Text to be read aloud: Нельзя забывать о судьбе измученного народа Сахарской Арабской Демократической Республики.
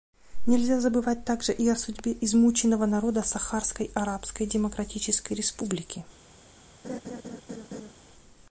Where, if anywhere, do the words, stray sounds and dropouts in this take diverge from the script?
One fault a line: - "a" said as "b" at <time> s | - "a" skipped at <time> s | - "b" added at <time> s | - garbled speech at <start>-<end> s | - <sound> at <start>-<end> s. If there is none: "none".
- "также и" added at 1.2 s
- laugh at 6.8-7.9 s